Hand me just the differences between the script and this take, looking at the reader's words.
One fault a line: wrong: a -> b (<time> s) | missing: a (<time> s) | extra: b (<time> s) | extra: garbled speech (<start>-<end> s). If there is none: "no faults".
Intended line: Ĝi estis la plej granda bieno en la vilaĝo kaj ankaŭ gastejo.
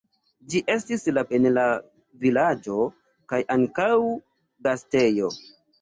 missing: plej granda bieno (1.2 s)